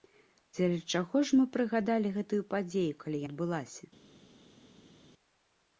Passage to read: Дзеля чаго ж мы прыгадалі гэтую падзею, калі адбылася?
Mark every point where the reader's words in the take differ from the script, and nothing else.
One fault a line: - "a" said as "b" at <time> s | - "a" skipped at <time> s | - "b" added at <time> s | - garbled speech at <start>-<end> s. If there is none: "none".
none